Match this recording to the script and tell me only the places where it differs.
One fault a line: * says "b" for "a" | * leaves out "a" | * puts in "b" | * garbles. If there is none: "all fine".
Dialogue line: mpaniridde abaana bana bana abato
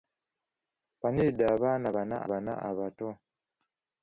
all fine